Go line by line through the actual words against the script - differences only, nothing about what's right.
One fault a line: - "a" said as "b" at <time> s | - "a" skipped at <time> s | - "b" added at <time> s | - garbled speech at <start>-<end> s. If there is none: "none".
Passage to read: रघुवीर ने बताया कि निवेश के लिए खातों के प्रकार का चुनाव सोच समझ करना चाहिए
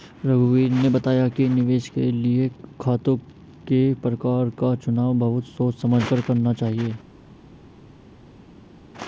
- "बहुत" added at 5.2 s
- "कर" added at 6.0 s